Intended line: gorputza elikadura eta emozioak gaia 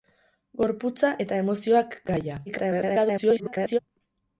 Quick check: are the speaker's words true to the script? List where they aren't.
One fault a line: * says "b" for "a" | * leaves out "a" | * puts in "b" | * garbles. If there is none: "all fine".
* leaves out "elikadura"
* garbles